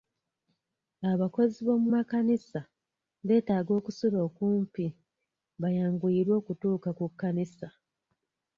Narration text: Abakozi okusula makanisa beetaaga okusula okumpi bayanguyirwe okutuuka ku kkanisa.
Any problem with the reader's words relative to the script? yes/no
yes